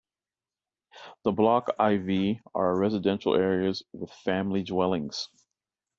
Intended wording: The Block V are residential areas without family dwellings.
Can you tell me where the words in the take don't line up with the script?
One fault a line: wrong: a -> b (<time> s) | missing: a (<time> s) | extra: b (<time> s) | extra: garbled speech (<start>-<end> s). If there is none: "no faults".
extra: I (1.8 s)
wrong: without -> with (3.9 s)